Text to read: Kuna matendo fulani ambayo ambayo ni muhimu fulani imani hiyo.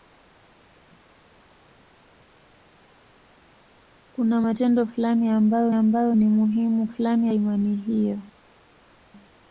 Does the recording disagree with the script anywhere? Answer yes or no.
no